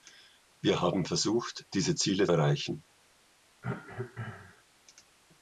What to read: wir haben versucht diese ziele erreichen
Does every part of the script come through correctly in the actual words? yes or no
yes